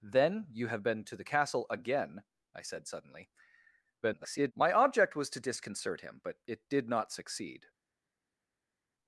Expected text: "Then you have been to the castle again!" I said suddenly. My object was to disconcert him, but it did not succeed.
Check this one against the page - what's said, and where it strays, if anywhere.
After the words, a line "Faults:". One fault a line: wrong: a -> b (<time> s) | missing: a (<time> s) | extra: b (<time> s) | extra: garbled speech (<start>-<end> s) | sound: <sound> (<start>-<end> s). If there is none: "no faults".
"Then you have been to the castle again!" I said suddenly. [garbled] My object was to disconcert him, but it did not succeed.
Faults:
extra: garbled speech (4.0-4.5 s)